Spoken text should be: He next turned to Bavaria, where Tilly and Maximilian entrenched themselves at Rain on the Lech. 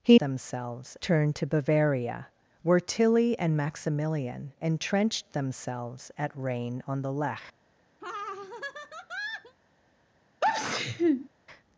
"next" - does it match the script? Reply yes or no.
no